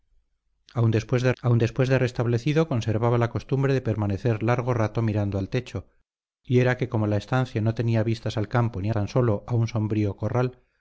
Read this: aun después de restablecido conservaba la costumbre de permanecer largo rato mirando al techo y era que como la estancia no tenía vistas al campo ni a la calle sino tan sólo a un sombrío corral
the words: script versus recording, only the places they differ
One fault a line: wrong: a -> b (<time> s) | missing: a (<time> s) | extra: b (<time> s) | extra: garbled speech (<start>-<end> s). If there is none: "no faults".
extra: aun después de (1.4 s)
missing: la calle sino (8.9 s)